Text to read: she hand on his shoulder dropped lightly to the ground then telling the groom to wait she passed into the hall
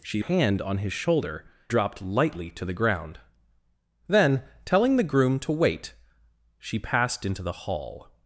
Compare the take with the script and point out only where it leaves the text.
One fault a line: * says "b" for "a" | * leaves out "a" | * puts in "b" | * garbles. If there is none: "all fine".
all fine